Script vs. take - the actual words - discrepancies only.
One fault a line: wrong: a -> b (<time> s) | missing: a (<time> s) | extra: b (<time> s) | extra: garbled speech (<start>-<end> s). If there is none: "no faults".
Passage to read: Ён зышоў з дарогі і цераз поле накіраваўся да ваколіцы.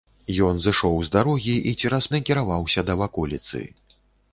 missing: поле (2.1 s)